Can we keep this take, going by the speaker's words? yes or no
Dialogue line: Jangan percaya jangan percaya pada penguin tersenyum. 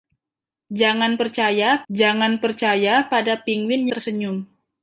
yes